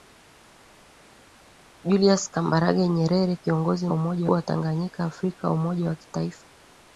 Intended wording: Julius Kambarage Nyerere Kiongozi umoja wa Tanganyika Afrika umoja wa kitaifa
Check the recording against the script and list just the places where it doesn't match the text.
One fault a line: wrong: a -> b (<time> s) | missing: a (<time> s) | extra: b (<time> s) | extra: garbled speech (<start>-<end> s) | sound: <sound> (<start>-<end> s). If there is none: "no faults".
no faults